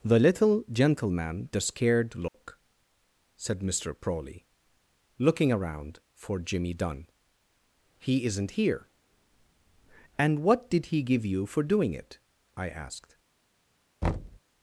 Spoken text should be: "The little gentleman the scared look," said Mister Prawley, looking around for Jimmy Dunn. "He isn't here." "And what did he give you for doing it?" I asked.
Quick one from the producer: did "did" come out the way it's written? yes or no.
yes